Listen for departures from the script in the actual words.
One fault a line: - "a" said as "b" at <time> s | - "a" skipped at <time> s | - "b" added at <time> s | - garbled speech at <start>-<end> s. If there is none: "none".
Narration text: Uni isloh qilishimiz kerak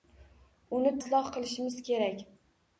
none